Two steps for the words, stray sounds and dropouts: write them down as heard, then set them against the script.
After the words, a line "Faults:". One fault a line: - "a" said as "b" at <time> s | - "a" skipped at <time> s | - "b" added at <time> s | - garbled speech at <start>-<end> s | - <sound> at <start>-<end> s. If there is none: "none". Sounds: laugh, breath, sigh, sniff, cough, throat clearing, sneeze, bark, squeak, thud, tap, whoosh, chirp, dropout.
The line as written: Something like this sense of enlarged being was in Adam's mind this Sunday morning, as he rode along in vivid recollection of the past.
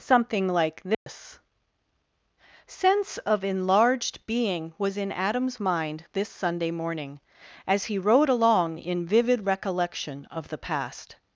Something like this sense of enlarged being was in Adam's mind this Sunday morning, as he rode along in vivid recollection of the past.
Faults:
- dropout at 0.9-1.1 s